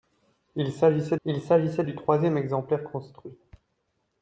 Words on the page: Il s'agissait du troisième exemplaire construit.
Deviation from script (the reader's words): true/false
true